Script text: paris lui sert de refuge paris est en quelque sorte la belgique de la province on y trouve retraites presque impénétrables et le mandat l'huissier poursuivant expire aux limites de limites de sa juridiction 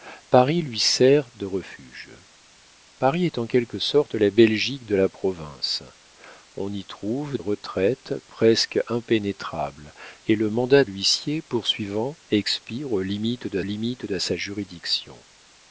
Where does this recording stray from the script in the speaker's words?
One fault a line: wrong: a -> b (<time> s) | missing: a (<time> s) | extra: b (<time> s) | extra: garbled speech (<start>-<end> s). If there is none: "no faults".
no faults